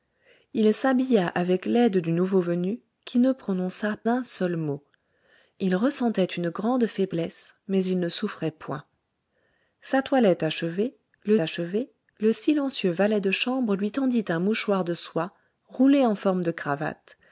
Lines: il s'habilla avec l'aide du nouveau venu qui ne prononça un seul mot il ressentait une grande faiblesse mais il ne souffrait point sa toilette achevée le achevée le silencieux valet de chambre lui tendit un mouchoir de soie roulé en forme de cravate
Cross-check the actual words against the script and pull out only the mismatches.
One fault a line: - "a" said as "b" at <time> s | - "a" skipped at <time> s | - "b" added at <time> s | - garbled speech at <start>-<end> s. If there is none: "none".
none